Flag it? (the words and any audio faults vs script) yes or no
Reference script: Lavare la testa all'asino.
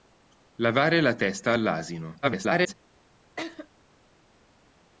yes